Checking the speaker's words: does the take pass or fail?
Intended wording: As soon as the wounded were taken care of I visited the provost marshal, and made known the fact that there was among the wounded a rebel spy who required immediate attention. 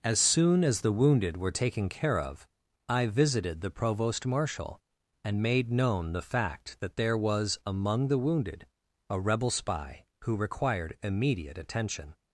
pass